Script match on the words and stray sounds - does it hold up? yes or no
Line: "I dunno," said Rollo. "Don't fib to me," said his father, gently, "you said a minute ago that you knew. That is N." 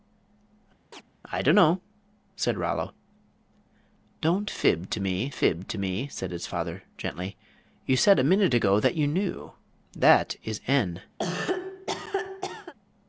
no